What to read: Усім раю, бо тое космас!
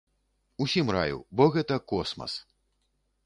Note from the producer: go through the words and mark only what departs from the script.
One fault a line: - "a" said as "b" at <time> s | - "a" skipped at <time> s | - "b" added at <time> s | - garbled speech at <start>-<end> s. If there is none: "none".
- "тое" said as "гэта" at 1.6 s